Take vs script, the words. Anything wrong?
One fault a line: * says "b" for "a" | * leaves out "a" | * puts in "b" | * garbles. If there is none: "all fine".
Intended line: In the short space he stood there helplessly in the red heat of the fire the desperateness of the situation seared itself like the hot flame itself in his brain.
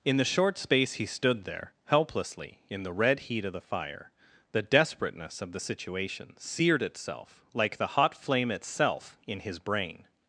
all fine